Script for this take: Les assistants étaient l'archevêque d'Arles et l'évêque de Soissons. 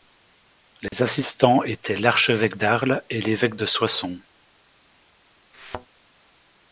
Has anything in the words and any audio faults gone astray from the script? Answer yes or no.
yes